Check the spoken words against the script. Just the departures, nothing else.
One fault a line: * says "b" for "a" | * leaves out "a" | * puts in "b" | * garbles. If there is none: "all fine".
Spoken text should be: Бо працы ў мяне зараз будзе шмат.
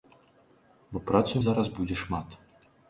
* leaves out "мяне"